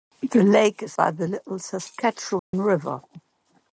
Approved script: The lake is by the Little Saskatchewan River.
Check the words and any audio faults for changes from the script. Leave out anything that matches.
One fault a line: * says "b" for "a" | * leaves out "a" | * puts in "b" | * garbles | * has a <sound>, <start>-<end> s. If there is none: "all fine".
* has a dropout, 2.4-2.5 s